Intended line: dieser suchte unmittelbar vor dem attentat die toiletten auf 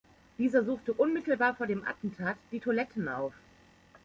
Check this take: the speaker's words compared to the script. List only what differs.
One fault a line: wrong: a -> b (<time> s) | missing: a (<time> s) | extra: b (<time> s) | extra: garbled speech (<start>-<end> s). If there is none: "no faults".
no faults